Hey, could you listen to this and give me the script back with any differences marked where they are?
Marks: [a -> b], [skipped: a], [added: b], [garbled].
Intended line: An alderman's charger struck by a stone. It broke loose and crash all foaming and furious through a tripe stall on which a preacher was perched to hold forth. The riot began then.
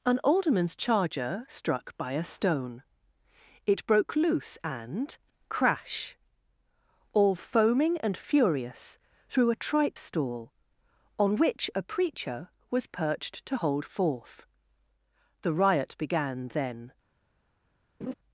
An alderman's charger struck by a stone. It broke loose and crash all foaming and furious through a tripe stall on which a preacher was perched to hold forth. The riot began then.